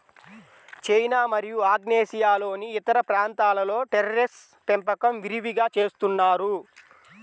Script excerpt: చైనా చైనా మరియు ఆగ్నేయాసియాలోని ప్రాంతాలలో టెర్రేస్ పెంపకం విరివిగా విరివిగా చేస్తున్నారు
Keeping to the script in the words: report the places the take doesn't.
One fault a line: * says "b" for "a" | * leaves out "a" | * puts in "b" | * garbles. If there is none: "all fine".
* leaves out "చైనా"
* puts in "ఇతర"
* leaves out "విరివిగా"